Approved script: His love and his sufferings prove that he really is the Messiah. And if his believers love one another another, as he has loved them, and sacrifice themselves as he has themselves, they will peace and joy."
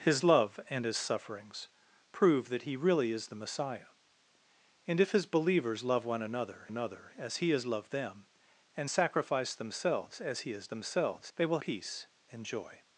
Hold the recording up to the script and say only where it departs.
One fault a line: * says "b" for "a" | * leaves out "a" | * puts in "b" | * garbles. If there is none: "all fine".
all fine